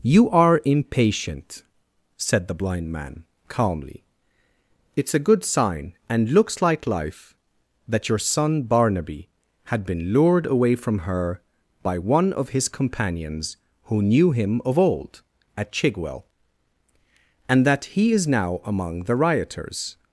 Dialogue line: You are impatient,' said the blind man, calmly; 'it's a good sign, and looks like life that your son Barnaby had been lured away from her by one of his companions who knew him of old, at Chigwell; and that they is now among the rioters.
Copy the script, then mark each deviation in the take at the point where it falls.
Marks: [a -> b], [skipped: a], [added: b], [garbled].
You are impatient,' said the blind man, calmly; 'it's a good sign, and looks like life that your son Barnaby had been lured away from her by one of his companions who knew him of old, at Chigwell; and that [they -> he] is now among the rioters.